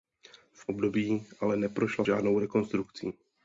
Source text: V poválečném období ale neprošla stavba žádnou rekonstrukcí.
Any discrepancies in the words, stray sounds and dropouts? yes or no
yes